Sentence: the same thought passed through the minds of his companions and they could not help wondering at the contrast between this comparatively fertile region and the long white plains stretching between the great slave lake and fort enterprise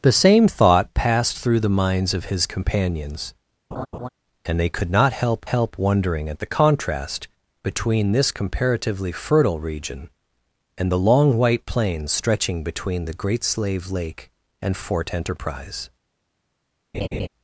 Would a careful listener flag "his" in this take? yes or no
no